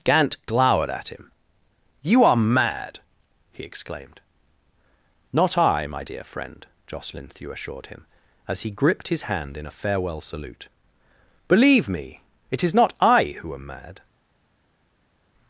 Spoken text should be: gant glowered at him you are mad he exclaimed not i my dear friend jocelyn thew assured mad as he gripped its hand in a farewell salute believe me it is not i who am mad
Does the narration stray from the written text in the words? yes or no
yes